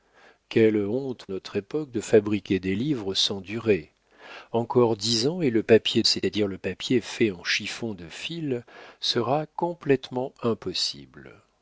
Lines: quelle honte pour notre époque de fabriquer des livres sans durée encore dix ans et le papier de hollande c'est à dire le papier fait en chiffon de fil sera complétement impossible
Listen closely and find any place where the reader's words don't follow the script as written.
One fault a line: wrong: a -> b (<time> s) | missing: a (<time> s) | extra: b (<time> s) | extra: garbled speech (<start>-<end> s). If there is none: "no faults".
missing: pour (1.3 s)
missing: de hollande (6.0 s)